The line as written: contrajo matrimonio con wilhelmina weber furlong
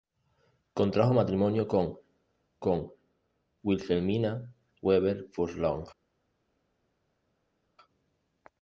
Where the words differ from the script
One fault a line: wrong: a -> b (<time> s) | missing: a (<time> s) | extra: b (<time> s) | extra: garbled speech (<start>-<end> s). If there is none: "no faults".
extra: con (2.6 s)